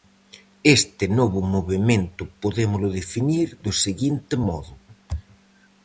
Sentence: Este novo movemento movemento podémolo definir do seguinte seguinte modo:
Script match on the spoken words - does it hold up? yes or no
no